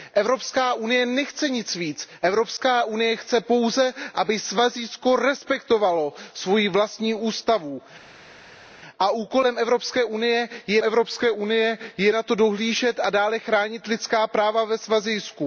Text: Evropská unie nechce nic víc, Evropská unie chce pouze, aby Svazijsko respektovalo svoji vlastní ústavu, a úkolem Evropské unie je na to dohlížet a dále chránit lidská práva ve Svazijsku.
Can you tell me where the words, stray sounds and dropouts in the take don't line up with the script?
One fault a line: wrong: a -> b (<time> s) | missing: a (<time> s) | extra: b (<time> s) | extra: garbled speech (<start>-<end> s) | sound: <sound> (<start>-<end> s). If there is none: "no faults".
extra: Evropské unie je (10.8 s)